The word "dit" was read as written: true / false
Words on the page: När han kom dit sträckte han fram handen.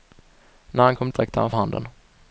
false